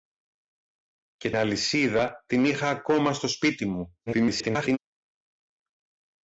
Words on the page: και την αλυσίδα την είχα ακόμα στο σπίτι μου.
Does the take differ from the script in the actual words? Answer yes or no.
yes